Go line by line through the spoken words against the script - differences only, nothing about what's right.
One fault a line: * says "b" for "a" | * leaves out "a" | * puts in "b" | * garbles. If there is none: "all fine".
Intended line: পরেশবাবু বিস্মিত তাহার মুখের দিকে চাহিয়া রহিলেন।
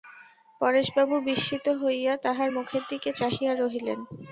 * puts in "হইয়া"